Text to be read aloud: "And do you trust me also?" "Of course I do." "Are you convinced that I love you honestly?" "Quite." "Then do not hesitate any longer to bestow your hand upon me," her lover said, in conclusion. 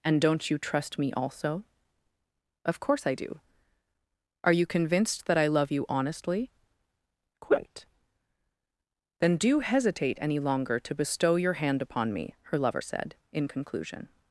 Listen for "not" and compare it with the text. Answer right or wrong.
wrong